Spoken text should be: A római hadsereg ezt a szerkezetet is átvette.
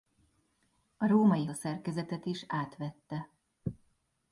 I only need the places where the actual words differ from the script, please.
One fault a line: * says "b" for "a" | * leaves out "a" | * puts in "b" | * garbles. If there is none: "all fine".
* leaves out "hadsereg ezt"